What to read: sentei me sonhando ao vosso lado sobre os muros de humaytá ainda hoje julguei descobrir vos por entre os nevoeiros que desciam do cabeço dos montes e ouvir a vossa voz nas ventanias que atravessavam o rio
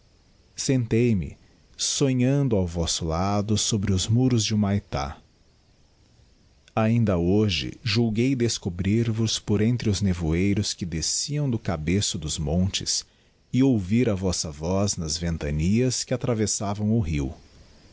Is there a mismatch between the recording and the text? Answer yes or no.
no